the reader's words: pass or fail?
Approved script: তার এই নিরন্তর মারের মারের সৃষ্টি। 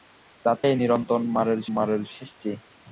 pass